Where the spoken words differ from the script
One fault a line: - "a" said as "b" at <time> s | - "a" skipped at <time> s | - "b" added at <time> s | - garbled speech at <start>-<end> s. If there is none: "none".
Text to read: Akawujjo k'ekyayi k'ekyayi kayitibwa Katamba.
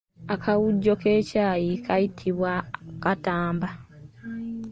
- "k'ekyayi" skipped at 1.7 s